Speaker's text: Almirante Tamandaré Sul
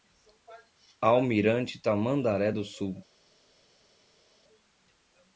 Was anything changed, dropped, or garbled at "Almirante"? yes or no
no